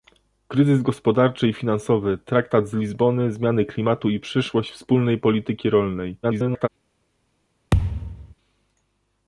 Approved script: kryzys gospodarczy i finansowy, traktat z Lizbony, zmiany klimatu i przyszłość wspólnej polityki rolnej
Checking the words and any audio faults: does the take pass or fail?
fail